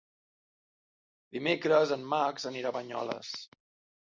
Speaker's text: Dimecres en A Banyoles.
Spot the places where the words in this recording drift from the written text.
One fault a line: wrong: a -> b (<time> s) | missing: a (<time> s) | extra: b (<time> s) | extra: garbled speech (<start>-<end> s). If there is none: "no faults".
extra: Max anirà (2.1 s)